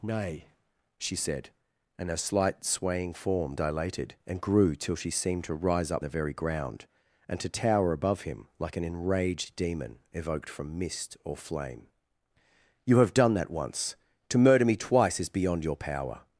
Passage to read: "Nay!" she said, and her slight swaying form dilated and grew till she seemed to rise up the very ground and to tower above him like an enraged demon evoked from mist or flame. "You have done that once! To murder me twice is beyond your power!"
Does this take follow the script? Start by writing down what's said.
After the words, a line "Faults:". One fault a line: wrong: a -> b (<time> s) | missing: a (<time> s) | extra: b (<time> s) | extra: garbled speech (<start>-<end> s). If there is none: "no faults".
"Nay!" she said, and her slight swaying form dilated and grew till she seemed to rise up the very ground and to tower above him like an enraged demon evoked from mist or flame. "You have done that once! To murder me twice is beyond your power!"
Faults:
no faults